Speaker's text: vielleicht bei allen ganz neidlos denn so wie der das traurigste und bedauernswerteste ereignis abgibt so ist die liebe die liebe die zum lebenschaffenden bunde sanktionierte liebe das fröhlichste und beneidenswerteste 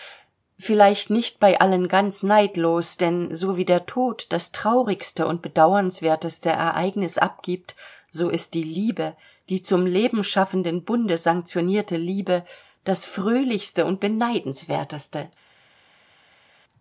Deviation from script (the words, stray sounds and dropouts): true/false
true